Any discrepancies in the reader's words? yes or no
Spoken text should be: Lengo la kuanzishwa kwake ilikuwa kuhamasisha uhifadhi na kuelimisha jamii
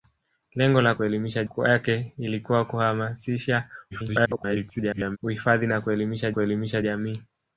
yes